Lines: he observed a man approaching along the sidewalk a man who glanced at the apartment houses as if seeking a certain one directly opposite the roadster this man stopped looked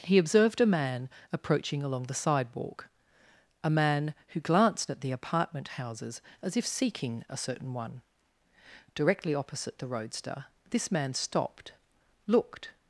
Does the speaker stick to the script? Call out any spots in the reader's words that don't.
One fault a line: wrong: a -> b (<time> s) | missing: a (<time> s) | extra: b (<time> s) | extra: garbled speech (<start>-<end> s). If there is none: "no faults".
no faults